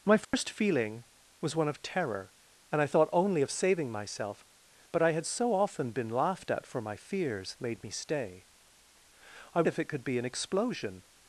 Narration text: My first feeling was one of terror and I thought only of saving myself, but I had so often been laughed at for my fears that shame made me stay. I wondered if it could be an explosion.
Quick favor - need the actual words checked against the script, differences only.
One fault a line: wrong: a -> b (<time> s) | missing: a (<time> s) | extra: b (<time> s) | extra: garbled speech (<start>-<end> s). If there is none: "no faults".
missing: that shame (7.5 s)
missing: wondered (9.6 s)